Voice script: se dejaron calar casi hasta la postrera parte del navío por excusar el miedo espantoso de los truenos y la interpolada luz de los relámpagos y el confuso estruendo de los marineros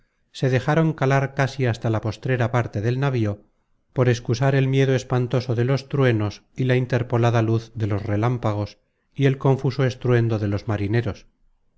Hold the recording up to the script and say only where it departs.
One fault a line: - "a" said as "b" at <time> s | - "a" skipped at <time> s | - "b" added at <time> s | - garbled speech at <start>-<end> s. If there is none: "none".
none